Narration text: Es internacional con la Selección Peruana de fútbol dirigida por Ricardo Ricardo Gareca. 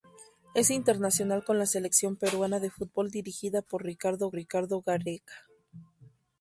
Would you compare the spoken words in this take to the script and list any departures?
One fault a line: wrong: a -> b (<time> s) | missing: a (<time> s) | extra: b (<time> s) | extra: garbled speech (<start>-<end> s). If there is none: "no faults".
no faults